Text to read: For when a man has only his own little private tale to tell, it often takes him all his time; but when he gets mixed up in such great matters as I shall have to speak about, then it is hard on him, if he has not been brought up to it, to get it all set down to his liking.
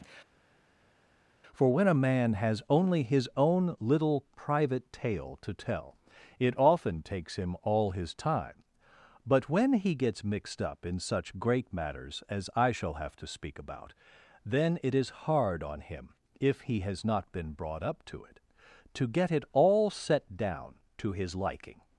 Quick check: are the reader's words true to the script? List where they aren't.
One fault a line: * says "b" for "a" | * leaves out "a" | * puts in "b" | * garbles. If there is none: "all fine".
all fine